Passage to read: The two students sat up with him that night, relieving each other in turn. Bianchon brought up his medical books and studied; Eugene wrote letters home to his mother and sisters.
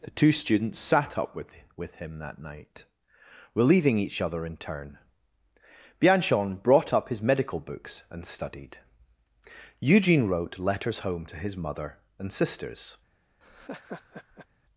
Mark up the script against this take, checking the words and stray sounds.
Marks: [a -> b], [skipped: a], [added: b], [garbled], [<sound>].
The two students sat up with [added: with] him that night, relieving each other in turn. Bianchon brought up his medical books and studied; Eugene wrote letters home to his mother and sisters. [laugh]